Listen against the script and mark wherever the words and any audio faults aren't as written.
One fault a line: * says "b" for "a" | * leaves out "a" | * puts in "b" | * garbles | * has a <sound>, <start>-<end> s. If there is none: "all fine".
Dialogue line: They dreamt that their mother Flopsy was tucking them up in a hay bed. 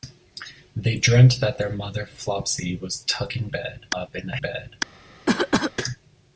* says "bed" for "them"
* leaves out "hay"
* has a cough, 5.3-5.7 s